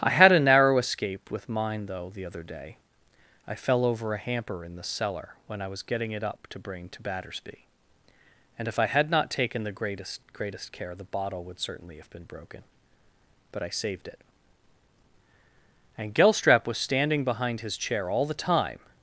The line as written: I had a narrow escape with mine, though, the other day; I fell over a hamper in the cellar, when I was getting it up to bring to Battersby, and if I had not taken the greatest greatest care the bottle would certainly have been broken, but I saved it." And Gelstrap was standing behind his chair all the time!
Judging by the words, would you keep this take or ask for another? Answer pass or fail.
pass